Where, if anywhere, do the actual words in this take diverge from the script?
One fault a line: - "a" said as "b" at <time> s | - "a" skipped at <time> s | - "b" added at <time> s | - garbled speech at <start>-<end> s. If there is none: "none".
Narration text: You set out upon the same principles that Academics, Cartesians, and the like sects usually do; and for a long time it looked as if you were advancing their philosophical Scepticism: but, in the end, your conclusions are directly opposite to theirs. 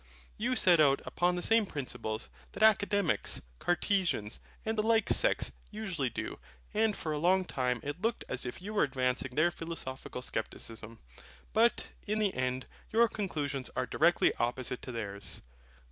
none